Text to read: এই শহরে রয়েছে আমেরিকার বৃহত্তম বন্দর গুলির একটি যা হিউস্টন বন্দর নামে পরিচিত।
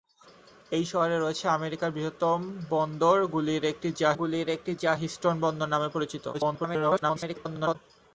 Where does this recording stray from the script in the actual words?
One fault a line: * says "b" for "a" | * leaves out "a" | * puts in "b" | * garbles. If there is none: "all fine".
* puts in "গুলির একটি যা"
* garbles